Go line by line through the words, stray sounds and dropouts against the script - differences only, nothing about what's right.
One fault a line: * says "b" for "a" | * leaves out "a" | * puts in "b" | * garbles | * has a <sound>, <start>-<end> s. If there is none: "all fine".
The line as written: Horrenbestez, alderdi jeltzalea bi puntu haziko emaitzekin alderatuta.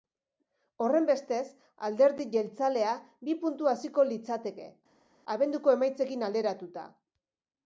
* puts in "litzateke abenduko"